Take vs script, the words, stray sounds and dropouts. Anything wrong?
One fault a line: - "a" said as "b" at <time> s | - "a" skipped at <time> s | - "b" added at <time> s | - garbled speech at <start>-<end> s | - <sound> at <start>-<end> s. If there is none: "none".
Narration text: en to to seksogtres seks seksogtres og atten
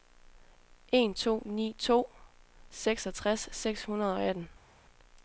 - "ni" added at 1.5 s
- "seksogtres" said as "hundrede" at 3.8 s